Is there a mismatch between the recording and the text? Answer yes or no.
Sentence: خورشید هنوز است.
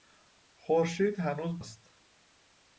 no